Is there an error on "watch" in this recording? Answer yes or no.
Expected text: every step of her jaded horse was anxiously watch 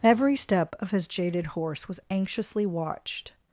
yes